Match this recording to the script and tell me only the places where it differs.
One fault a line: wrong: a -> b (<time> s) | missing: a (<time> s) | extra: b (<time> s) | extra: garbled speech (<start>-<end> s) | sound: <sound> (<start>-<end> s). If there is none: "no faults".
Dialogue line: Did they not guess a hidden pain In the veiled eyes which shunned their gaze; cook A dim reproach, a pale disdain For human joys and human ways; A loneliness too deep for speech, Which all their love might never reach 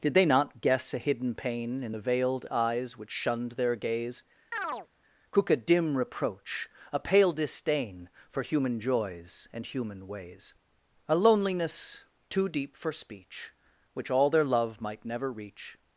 sound: chirp (4.5-4.9 s)